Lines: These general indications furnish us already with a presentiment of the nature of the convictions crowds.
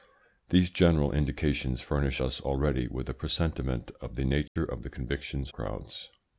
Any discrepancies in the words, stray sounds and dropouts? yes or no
yes